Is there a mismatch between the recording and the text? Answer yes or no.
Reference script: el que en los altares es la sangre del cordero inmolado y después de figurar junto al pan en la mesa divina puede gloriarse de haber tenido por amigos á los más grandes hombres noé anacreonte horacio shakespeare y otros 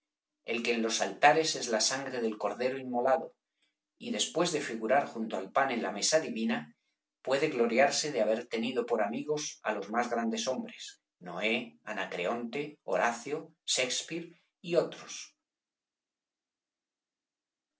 no